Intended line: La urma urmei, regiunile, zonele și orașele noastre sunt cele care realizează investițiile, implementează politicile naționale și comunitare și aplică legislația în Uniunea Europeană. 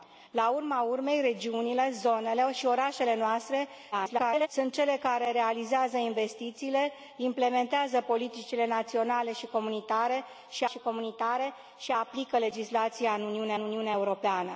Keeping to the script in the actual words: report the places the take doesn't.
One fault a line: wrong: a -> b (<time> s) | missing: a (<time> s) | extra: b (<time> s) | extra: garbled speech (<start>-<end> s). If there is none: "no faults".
extra: garbled speech (3.9-4.5 s)
extra: și comunitare și (10.7 s)
extra: Uniunea (13.6 s)